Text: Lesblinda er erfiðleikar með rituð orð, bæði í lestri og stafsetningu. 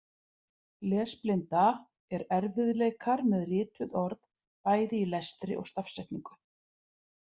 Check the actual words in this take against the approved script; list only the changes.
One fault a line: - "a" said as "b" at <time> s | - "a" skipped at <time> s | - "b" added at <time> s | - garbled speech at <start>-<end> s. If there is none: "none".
none